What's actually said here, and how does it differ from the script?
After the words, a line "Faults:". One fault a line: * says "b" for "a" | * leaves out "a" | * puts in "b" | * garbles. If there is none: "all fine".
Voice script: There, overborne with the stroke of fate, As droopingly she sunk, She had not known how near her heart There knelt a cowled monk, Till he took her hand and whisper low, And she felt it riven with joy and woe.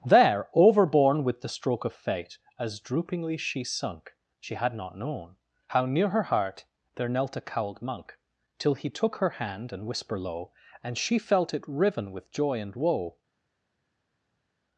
There, overborne with the stroke of fate, As droopingly she sunk, She had not known how near her heart There knelt a cowled monk, Till he took her hand and whisper low, And she felt it riven with joy and woe.
Faults:
all fine